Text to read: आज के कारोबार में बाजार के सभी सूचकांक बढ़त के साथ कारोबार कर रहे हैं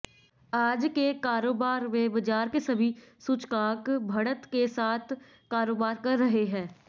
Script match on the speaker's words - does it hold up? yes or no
yes